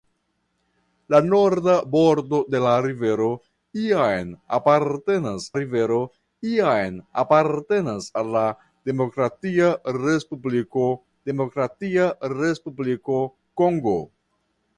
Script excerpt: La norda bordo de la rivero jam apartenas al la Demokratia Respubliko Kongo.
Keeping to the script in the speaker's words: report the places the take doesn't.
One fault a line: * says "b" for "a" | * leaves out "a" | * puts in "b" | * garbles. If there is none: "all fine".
* puts in "rivero jam apartenas"
* puts in "Demokratia Respubliko"